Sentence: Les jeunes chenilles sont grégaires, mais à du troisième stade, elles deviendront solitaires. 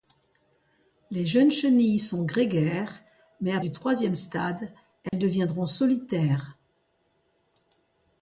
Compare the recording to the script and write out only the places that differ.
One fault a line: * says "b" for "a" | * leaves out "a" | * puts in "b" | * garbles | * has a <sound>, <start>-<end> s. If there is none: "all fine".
* has a dropout, 5.1-5.1 s